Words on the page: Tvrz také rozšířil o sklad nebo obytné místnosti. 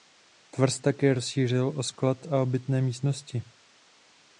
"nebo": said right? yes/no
no